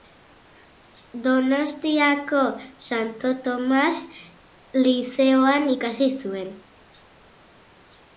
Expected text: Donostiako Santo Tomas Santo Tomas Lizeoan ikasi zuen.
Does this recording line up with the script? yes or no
no